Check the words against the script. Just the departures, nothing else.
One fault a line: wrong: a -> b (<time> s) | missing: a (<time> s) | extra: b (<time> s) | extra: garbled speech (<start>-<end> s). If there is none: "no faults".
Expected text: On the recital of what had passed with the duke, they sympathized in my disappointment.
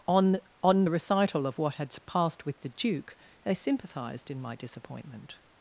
extra: on (0.6 s)